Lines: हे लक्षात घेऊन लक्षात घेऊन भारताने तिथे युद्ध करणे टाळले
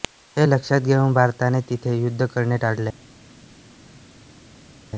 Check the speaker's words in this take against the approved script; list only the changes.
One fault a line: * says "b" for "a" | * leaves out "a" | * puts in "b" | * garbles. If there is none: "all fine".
* leaves out "लक्षात घेऊन"